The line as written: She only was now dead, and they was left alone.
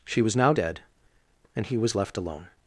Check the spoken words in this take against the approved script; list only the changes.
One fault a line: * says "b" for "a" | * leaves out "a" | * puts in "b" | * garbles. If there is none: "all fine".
* leaves out "only"
* says "he" for "they"